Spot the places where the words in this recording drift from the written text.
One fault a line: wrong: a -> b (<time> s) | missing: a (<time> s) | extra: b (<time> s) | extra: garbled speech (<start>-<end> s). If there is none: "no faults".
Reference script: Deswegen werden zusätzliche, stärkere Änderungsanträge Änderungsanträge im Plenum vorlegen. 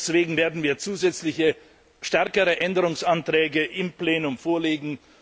extra: wir (0.6 s)
missing: Änderungsanträge (3.6 s)